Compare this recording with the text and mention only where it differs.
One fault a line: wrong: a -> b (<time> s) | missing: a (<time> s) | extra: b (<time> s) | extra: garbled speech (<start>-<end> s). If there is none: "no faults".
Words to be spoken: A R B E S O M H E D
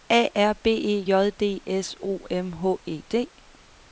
extra: J D (1.0 s)